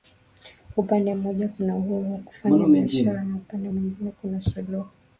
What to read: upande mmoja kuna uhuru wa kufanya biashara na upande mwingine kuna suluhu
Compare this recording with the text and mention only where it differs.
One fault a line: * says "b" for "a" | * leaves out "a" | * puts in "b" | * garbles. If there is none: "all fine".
all fine